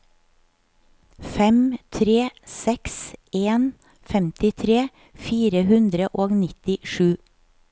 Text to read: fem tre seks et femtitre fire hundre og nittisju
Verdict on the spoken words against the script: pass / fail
fail